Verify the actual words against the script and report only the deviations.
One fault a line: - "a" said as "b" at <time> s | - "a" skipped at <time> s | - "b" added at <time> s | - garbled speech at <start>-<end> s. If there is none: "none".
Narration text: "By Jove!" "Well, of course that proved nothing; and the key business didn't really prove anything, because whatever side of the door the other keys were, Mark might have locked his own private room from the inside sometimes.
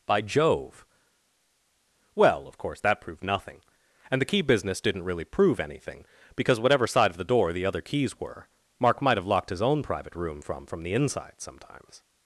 - "from" added at 10.7 s